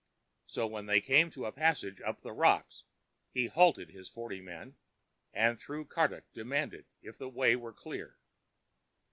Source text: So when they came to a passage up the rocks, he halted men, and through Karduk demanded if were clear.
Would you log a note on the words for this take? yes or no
yes